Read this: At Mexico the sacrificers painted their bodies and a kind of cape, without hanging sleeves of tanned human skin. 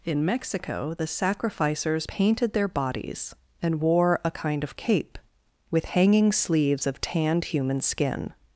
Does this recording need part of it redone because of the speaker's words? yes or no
yes